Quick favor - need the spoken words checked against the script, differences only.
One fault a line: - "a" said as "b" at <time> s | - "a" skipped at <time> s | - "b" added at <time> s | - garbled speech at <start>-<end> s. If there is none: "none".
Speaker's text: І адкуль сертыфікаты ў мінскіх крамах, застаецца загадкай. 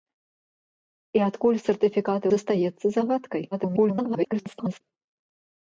- "ў мінскіх крамах" skipped at 2.3 s
- garbled speech at 3.5-4.8 s